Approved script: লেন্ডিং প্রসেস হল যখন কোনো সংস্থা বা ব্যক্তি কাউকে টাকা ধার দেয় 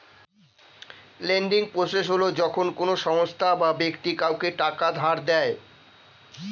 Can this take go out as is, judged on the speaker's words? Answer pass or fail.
pass